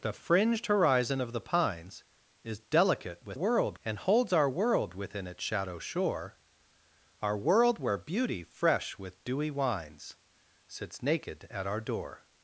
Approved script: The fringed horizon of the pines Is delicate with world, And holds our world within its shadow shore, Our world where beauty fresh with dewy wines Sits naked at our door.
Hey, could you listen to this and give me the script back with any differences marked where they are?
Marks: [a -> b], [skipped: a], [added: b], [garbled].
The fringed horizon of the pines Is delicate with world, And holds our world within its shadow shore, Our world where beauty fresh with dewy wines Sits naked at our door.